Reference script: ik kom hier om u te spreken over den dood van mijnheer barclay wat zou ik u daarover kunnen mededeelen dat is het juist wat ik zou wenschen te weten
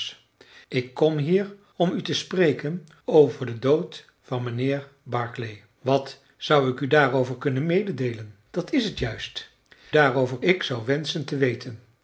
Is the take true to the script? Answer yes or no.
no